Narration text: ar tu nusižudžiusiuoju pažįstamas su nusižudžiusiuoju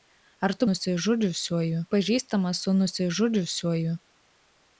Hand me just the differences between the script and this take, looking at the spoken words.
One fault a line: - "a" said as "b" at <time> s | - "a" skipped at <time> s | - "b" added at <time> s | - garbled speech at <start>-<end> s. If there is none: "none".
none